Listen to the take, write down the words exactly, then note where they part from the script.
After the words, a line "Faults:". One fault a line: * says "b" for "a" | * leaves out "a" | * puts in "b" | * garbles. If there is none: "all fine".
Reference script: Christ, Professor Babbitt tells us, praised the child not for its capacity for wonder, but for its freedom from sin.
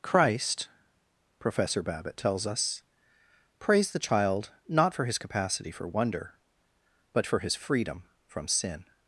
Christ, Professor Babbitt tells us, praised the child not for his capacity for wonder, but for his freedom from sin.
Faults:
* says "his" for "its"
* says "his" for "its"